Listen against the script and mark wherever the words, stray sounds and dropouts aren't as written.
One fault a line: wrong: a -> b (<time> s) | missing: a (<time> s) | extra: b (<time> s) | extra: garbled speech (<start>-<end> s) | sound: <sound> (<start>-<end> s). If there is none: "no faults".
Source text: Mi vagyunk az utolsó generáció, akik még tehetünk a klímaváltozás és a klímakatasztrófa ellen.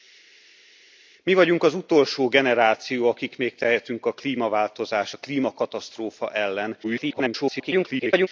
missing: és (5.1 s)
extra: garbled speech (6.8-8.3 s)